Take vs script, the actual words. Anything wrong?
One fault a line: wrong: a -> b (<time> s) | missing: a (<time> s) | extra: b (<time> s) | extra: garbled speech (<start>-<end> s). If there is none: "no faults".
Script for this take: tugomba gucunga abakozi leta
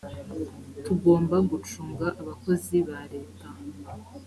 extra: ba (2.9 s)